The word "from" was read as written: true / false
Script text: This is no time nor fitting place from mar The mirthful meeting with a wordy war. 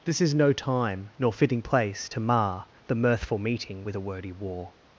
false